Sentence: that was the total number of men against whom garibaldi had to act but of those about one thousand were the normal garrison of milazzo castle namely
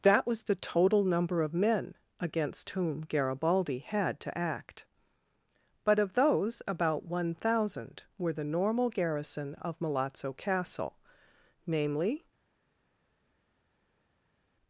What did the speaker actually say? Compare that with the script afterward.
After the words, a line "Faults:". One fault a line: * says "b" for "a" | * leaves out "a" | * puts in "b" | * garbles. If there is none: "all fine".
that was the total number of men against whom garibaldi had to act but of those about one thousand were the normal garrison of milazzo castle namely
Faults:
all fine